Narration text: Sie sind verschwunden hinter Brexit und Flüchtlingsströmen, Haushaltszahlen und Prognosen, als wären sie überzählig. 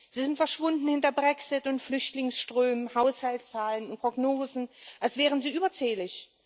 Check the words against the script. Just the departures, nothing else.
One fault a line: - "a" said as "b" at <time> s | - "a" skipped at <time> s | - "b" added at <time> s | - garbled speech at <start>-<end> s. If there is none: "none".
none